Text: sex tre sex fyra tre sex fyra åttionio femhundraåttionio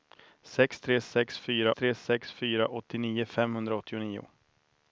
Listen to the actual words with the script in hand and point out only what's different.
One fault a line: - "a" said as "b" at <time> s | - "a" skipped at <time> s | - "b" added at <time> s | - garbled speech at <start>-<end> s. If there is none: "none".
none